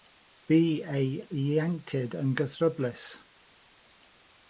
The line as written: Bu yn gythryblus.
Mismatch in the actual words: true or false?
true